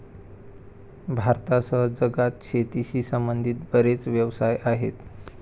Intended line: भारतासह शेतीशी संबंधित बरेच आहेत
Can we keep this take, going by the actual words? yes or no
no